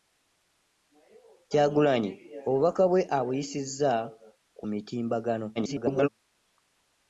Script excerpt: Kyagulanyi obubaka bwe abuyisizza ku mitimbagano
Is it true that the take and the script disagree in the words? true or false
true